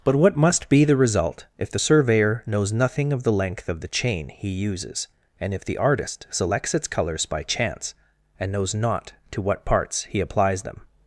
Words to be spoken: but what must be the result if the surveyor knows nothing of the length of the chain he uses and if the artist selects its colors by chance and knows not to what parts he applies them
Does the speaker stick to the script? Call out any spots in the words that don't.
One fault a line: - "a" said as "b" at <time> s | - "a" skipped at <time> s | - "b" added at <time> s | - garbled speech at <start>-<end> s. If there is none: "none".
none